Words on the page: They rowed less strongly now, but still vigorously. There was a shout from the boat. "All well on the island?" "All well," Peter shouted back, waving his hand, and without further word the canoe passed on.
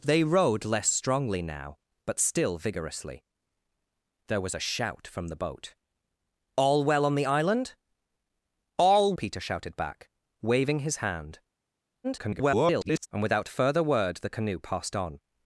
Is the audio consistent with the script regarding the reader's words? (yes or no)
no